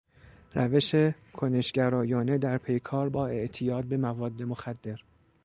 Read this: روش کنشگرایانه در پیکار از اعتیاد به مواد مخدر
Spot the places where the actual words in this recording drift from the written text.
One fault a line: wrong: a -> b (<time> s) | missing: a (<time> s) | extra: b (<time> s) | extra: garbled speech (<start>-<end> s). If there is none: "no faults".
wrong: از -> با (3.1 s)